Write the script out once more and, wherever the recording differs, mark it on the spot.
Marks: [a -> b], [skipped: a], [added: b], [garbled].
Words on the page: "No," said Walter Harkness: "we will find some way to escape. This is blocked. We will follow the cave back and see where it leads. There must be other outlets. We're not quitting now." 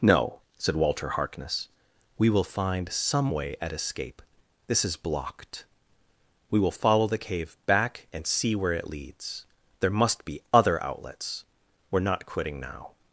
"No," said Walter Harkness: "we will find some way [to -> at] escape. This is blocked. We will follow the cave back and see where it leads. There must be other outlets. We're not quitting now."